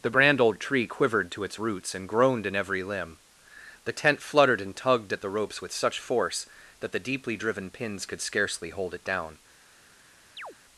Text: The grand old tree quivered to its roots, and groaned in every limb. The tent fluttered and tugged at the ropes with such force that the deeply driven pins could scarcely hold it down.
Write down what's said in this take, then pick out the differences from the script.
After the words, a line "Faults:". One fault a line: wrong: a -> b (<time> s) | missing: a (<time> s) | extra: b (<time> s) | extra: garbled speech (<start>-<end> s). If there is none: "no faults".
The brand old tree quivered to its roots, and groaned in every limb. The tent fluttered and tugged at the ropes with such force that the deeply driven pins could scarcely hold it down.
Faults:
wrong: grand -> brand (0.1 s)